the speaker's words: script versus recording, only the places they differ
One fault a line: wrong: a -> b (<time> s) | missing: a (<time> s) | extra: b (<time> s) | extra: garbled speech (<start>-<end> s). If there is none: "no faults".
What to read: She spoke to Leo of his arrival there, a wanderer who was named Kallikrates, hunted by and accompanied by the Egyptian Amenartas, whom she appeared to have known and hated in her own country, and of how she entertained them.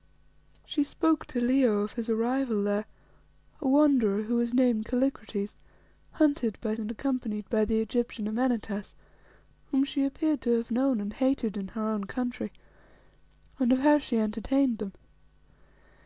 no faults